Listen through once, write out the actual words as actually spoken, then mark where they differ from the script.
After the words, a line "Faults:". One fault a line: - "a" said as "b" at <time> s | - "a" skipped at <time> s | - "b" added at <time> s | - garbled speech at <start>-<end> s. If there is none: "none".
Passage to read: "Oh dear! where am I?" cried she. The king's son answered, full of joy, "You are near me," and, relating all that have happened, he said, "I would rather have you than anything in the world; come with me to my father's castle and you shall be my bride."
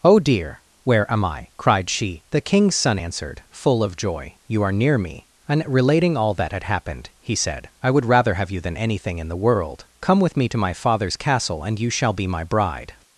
"Oh dear! where am I?" cried she. The king's son answered, full of joy, "You are near me," and, relating all that had happened, he said, "I would rather have you than anything in the world; come with me to my father's castle and you shall be my bride."
Faults:
- "have" said as "had" at 6.5 s